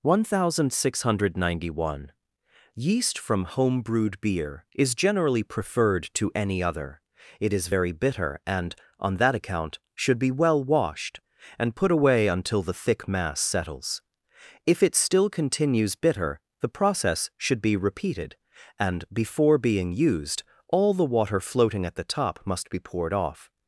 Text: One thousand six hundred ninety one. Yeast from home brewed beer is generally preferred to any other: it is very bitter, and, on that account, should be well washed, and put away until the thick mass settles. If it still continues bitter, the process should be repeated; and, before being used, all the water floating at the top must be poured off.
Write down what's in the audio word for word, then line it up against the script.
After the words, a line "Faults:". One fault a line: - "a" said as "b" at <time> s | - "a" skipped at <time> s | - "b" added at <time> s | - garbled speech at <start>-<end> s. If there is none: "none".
One thousand six hundred ninety one. Yeast from home brewed beer is generally preferred to any other: it is very bitter, and, on that account, should be well washed, and put away until the thick mass settles. If it still continues bitter, the process should be repeated; and, before being used, all the water floating at the top must be poured off.
Faults:
none